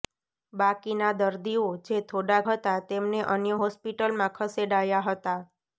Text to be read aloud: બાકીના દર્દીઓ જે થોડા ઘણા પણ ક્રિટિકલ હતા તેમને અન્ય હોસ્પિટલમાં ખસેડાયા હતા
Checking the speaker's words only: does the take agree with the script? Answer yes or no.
no